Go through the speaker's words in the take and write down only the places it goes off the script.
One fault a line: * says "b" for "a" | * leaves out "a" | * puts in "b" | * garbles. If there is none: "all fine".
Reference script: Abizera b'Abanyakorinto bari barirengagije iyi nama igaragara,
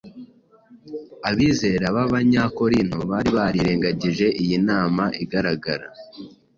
all fine